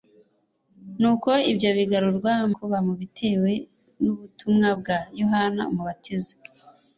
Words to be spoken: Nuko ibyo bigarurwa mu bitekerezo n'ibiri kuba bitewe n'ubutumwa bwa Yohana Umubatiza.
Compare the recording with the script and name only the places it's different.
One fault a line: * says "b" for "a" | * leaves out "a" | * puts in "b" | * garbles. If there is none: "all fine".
* leaves out "mu bitekerezo n'ibiri"